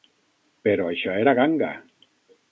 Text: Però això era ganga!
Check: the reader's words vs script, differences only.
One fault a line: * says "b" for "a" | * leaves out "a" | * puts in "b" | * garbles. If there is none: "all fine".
all fine